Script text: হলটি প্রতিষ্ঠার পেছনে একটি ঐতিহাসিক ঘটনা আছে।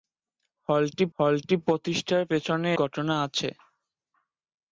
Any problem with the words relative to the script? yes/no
yes